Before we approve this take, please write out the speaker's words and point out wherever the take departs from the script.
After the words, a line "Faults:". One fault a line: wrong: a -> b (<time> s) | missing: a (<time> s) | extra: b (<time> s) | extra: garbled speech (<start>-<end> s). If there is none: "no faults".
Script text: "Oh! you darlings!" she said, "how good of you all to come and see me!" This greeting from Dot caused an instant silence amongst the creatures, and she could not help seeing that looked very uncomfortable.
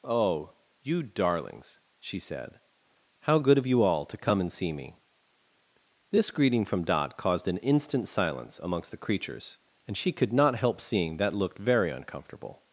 "Oh! you darlings!" she said, "how good of you all to come and see me!" This greeting from Dot caused an instant silence amongst the creatures, and she could not help seeing that looked very uncomfortable.
Faults:
no faults